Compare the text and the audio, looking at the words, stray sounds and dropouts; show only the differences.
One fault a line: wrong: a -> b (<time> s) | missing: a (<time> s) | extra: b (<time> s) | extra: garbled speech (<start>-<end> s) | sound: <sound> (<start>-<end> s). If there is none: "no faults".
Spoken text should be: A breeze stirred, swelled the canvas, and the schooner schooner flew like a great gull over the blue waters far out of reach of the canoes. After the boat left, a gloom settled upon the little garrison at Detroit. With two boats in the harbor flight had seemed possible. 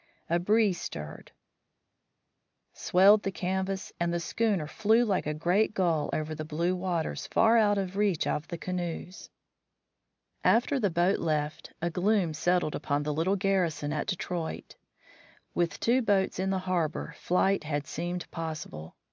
missing: schooner (4.7 s)